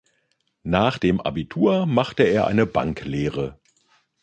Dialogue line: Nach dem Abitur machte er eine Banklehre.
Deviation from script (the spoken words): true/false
false